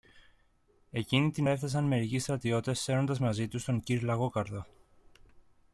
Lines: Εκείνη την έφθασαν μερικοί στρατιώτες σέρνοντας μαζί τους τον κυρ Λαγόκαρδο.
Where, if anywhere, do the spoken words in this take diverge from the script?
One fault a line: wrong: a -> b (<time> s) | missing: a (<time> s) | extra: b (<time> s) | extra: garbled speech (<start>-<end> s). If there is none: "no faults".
no faults